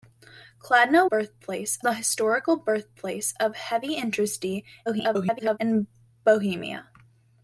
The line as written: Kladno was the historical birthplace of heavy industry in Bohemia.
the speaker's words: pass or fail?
fail